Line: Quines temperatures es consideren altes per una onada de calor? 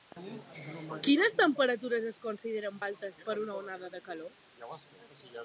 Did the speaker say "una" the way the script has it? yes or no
yes